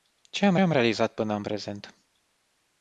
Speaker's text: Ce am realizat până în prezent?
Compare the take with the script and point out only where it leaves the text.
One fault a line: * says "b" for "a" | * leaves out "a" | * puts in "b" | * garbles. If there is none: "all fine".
* puts in "am"